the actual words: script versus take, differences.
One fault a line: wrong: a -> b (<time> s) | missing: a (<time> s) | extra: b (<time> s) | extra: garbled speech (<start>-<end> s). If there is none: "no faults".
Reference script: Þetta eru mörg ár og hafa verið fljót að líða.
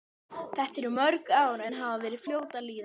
wrong: og -> en (1.6 s)